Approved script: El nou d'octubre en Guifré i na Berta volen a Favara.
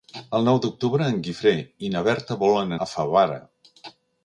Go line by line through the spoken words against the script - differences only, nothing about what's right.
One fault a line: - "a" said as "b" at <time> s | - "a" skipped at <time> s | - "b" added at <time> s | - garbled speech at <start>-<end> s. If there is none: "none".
none